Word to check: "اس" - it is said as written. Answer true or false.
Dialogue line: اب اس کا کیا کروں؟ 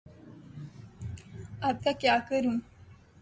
false